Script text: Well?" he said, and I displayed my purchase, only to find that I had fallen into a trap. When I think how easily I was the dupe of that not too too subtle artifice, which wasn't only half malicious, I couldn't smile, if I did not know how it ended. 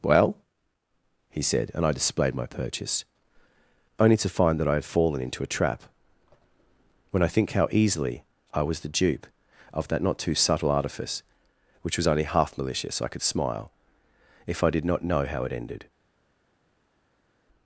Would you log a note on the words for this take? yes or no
yes